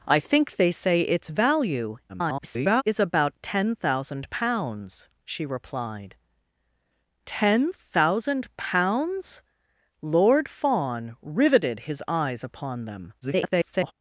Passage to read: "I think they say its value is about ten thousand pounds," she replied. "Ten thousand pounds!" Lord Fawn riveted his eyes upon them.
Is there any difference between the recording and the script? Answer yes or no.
yes